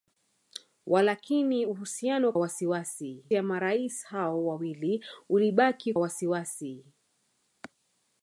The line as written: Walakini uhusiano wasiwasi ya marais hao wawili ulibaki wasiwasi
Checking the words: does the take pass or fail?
pass